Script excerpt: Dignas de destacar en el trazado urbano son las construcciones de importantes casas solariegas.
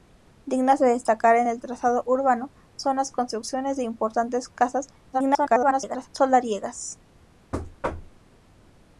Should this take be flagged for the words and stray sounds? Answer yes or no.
yes